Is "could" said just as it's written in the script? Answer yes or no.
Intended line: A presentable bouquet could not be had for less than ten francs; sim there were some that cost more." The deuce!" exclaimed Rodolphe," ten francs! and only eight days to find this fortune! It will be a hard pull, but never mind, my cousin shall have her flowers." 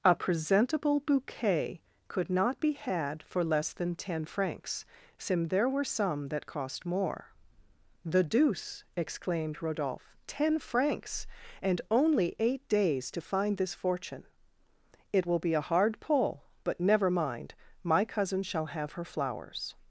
yes